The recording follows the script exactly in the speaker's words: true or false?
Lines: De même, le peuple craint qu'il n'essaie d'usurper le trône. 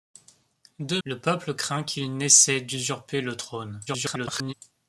false